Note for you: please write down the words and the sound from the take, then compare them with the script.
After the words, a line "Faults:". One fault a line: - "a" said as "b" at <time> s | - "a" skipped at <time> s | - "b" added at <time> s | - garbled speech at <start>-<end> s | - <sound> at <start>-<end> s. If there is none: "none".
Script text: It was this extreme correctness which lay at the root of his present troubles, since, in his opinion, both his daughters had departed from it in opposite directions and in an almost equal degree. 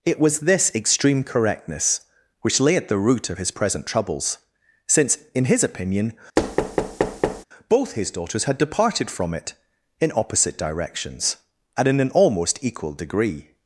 It was this extreme correctness which lay at the root of his present troubles, since, in his opinion, both his daughters had departed from it in opposite directions and in an almost equal degree.
Faults:
- thud at 6.4-7.4 s